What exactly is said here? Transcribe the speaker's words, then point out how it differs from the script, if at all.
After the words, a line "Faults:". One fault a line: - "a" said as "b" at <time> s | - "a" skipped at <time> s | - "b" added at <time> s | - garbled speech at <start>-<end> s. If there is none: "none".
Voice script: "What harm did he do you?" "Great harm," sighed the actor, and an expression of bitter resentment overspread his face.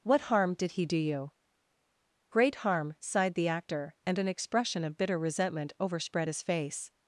"What harm did he do you?" "Great harm," sighed the actor, and an expression of bitter resentment overspread his face.
Faults:
none